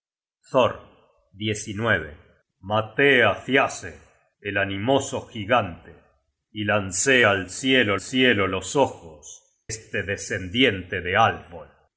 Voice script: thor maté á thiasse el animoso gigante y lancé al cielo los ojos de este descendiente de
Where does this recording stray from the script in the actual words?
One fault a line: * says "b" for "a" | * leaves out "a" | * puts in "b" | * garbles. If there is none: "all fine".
* puts in "cielo"
* leaves out "de"